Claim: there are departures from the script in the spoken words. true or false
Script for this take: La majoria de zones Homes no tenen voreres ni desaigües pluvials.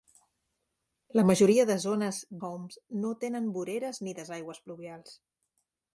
false